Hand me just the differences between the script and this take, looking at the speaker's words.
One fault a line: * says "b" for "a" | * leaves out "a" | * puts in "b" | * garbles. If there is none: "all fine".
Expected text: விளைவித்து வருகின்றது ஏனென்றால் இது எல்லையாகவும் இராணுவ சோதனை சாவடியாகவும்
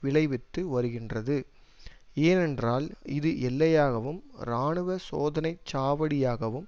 all fine